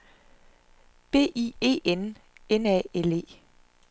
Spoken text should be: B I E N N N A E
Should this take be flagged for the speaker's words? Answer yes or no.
yes